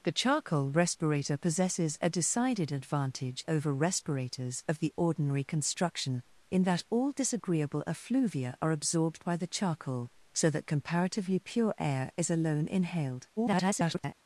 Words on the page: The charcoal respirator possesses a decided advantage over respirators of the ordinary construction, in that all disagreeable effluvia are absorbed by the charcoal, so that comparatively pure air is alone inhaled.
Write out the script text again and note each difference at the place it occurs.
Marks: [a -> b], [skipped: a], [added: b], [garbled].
The charcoal respirator possesses a decided advantage over respirators of the ordinary construction, in that all disagreeable effluvia are absorbed by the charcoal, so that comparatively pure air is alone inhaled. [garbled]